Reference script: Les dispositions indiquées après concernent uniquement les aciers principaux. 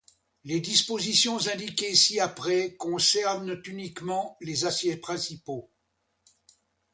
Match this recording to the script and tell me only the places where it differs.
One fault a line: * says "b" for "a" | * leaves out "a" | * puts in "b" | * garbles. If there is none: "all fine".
* puts in "ci"